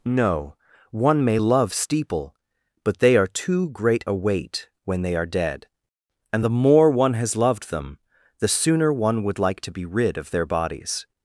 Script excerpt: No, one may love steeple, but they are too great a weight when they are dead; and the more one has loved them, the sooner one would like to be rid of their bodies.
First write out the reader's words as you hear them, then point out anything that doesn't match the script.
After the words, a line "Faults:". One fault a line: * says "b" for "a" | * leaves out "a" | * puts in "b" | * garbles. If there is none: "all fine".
No, one may love steeple, but they are too great a weight when they are dead; and the more one has loved them, the sooner one would like to be rid of their bodies.
Faults:
all fine